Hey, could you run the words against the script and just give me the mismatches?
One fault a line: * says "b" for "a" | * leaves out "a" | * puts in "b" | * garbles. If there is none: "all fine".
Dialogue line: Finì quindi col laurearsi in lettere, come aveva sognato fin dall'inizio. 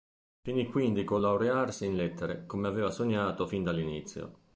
all fine